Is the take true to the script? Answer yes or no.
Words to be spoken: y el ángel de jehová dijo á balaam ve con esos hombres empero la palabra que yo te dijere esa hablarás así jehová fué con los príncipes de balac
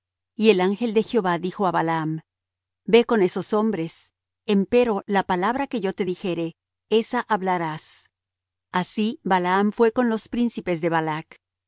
no